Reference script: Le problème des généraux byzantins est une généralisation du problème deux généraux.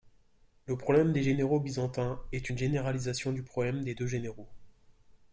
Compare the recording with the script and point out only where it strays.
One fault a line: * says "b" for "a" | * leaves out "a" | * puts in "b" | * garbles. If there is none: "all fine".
* puts in "des"